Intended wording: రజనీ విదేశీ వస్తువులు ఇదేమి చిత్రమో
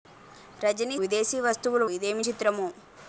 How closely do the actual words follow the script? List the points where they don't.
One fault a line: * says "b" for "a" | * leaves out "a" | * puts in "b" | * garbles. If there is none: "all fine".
all fine